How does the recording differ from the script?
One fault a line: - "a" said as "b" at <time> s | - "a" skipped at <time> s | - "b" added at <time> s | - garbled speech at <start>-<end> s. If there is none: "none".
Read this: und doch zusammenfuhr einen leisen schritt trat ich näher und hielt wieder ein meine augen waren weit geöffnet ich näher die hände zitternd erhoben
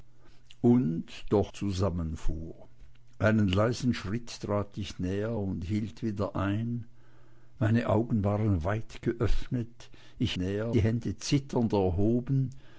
none